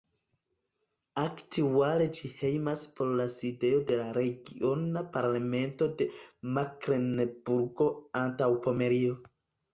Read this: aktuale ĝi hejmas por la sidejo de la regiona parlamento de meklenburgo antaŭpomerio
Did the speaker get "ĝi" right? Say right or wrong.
right